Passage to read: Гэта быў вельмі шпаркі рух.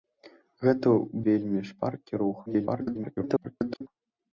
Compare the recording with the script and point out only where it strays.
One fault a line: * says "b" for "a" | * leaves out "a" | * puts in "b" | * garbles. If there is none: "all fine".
* leaves out "быў"
* garbles